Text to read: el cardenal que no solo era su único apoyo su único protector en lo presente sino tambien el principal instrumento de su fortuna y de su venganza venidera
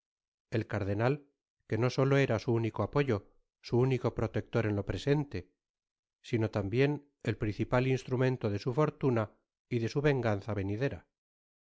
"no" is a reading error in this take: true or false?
false